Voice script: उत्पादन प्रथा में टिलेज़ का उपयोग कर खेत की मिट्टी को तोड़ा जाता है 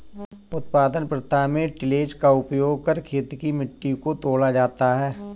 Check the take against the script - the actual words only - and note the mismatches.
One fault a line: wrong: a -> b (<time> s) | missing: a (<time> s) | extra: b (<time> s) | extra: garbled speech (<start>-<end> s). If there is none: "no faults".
no faults